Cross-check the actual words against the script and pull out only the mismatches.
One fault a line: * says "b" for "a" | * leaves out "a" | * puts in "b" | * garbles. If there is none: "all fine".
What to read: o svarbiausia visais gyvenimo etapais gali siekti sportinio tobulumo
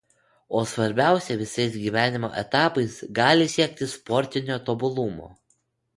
all fine